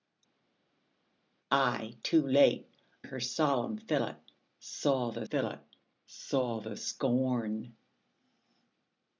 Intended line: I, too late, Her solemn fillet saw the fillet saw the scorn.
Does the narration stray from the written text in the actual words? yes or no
no